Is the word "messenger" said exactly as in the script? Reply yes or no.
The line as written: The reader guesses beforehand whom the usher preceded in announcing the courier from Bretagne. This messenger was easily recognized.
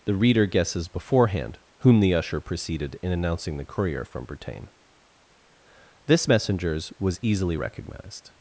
no